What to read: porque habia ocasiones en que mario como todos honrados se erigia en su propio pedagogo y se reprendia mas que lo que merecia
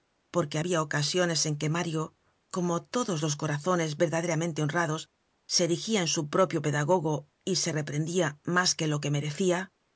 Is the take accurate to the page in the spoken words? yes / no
no